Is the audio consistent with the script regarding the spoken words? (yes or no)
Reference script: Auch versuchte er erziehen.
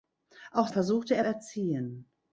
yes